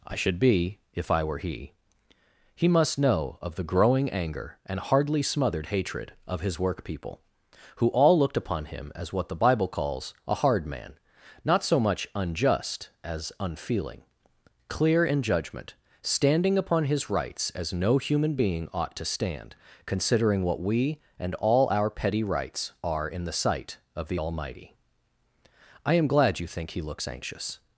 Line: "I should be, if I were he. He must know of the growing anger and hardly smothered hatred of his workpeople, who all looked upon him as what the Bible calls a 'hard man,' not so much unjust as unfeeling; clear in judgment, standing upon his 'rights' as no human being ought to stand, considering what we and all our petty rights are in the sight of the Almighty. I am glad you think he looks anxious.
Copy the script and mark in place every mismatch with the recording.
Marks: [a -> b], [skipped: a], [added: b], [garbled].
"I should be, if I were he. He must know of the growing anger and hardly smothered hatred of his workpeople, who all looked upon him as what the Bible calls a 'hard man,' not so much unjust as unfeeling; clear in judgment, standing upon his 'rights' as no human being ought to stand, considering what we and all our petty rights are in the sight of the Almighty. I am glad you think he looks anxious.